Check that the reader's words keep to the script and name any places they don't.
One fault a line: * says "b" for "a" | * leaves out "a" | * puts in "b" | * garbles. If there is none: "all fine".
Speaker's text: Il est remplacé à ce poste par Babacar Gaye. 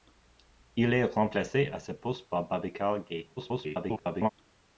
* garbles